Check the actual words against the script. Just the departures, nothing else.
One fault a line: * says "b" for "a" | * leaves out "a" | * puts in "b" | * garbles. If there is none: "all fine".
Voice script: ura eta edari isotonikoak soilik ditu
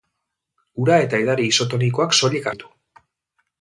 all fine